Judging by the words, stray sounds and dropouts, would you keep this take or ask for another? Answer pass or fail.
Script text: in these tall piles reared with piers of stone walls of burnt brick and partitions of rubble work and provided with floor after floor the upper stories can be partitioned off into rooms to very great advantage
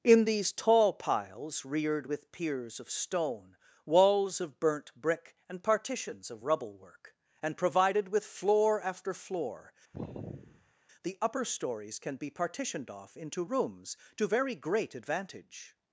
fail